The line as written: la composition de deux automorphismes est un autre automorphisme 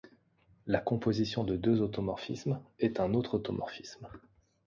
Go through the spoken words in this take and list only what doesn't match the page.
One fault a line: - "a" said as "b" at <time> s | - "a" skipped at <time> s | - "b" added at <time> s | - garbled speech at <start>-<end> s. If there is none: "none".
none